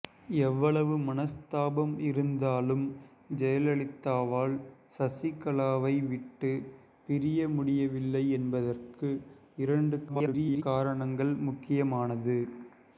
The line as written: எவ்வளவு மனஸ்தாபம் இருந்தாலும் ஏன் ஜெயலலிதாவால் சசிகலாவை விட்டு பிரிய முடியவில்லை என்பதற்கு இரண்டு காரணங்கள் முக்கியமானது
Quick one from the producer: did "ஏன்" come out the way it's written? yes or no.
no